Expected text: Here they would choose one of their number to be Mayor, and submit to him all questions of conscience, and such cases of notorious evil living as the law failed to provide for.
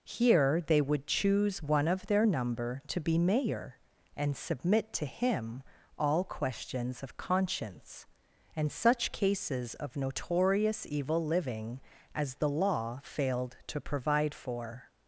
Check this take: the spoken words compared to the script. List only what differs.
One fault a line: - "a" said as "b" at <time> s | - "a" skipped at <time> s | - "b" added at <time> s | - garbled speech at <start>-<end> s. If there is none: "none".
none